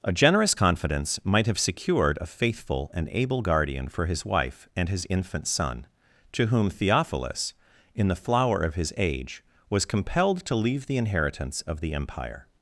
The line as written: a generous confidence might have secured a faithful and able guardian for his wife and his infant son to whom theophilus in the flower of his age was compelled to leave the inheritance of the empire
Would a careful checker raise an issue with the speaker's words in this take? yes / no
no